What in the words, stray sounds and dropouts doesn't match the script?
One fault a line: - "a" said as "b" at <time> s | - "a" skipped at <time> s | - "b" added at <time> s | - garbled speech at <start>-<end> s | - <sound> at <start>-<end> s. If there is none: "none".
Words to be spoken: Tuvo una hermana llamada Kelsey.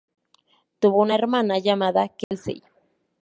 - dropout at 2.2-2.3 s